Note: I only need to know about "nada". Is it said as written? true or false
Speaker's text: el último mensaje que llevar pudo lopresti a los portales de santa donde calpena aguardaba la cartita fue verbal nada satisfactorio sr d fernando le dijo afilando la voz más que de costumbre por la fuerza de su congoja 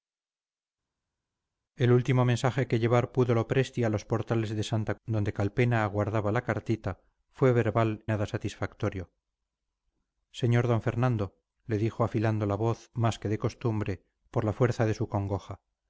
true